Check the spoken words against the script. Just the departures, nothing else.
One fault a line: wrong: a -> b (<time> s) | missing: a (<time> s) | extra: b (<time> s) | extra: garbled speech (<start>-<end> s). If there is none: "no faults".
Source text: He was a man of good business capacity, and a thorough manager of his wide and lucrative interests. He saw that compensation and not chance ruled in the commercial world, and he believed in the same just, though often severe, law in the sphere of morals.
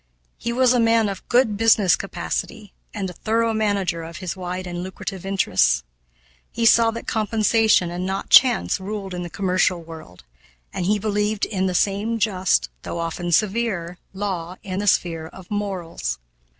no faults